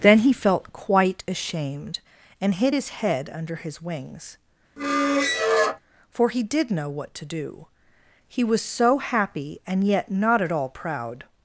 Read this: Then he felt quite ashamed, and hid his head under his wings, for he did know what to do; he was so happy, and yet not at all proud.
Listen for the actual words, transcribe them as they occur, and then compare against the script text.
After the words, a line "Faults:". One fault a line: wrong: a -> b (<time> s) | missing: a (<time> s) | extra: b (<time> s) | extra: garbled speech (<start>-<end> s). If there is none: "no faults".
Then he felt quite ashamed, and hid his head under his wings, for he did know what to do; he was so happy, and yet not at all proud.
Faults:
no faults